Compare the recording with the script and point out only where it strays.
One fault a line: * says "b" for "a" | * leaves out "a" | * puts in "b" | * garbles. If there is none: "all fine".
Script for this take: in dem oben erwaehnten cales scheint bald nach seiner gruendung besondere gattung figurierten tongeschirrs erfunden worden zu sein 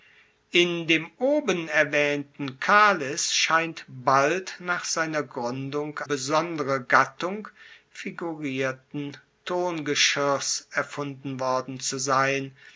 all fine